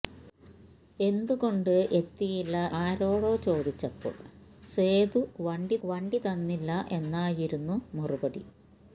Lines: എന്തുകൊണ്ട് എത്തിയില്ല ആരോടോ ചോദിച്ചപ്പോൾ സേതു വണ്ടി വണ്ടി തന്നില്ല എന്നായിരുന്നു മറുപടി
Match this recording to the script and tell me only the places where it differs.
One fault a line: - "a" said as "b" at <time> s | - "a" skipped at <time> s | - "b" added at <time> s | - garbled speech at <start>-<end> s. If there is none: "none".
none